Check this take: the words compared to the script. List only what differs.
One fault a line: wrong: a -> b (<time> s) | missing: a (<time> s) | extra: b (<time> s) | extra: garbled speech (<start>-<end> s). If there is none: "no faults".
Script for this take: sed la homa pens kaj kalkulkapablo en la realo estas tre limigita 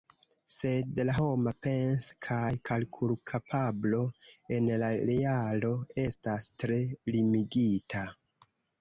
no faults